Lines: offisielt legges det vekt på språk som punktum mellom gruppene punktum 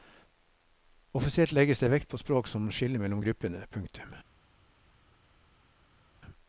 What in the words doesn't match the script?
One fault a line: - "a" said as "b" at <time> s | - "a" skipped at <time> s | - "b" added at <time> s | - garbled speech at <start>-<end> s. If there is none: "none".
- "punktum" said as "skille" at 2.7 s